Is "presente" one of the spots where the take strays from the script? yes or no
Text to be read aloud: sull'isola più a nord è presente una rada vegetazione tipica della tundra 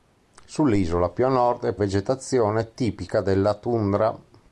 yes